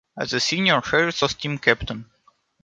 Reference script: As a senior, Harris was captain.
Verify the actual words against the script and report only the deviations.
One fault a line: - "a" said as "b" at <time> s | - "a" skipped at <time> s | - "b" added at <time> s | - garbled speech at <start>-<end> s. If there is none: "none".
- "team" added at 1.3 s